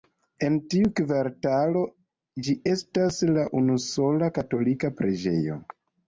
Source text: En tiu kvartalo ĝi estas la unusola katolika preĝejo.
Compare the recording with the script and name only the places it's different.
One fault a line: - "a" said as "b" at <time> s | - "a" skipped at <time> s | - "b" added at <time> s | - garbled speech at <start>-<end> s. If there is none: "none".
none